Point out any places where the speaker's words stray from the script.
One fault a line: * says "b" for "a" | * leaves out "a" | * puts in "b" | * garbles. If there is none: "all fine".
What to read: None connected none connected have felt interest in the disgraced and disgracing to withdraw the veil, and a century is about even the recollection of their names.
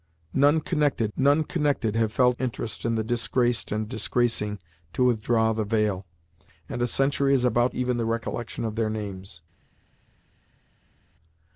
all fine